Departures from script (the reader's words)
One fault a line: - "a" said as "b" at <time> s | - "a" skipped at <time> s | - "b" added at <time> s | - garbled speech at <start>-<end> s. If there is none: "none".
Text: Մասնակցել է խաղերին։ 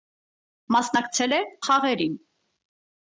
none